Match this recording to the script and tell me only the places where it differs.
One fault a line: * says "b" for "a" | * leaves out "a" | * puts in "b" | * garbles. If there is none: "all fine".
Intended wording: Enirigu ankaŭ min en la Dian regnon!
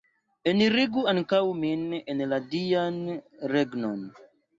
all fine